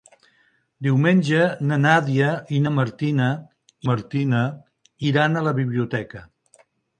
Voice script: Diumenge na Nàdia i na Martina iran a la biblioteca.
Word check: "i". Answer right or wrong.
right